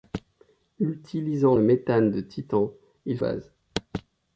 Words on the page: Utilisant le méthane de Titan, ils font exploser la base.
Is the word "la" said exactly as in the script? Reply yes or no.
no